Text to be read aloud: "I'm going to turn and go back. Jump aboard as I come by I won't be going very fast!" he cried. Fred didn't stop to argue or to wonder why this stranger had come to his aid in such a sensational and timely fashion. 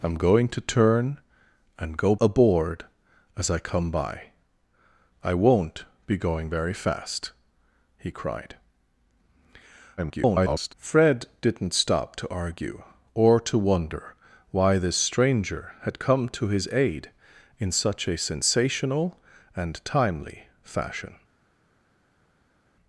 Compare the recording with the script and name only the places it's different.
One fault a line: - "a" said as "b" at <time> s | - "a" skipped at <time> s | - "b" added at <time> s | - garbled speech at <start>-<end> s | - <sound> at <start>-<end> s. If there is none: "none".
- "back Jump" skipped at 2.1 s
- garbled speech at 10.0-10.7 s